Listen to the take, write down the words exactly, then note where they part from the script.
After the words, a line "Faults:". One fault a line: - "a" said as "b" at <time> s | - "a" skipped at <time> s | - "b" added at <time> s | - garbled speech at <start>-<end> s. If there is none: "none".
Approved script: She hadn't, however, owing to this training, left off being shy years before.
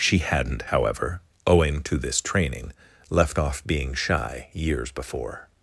She hadn't, however, owing to this training, left off being shy years before.
Faults:
none